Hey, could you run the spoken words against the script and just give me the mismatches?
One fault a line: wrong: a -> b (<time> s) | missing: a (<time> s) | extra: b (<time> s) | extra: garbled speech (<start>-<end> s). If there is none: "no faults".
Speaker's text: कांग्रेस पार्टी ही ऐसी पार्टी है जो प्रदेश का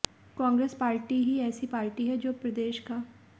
no faults